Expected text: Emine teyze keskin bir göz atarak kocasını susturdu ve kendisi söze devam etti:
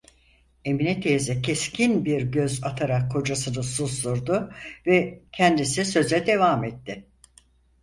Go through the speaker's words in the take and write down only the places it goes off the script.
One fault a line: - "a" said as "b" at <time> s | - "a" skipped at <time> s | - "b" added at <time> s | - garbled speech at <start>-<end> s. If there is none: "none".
none